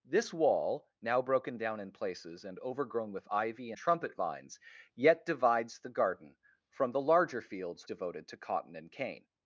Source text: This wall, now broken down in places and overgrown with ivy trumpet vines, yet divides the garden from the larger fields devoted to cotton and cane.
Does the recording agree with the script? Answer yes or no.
yes